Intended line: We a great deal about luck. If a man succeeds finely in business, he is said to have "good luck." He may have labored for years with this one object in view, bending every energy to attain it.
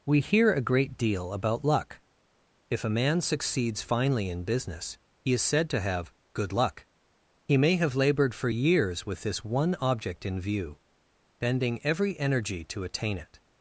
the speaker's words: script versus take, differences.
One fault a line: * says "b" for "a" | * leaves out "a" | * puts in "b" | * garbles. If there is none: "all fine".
* puts in "hear"